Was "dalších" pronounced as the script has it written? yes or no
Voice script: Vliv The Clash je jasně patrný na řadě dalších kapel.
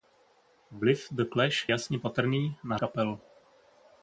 no